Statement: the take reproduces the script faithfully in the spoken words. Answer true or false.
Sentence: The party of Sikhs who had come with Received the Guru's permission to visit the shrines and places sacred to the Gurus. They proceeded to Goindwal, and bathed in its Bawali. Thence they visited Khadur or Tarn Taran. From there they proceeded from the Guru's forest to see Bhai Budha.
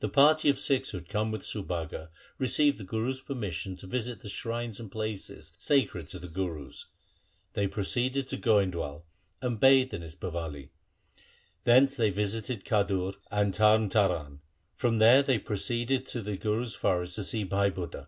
false